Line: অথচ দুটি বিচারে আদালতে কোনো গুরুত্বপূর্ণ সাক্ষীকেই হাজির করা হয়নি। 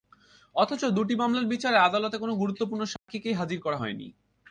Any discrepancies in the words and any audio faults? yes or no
yes